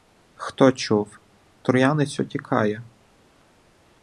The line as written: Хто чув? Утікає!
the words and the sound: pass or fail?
fail